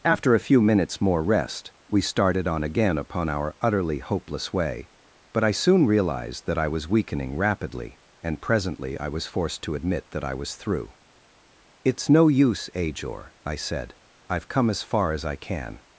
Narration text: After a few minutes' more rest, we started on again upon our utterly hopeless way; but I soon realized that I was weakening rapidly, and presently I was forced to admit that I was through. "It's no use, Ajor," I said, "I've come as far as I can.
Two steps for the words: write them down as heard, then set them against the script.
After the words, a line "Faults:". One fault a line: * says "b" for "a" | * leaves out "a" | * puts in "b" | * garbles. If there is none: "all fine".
After a few minutes' more rest, we started on again upon our utterly hopeless way; but I soon realized that I was weakening rapidly, and presently I was forced to admit that I was through. "It's no use, Ajor," I said, "I've come as far as I can.
Faults:
all fine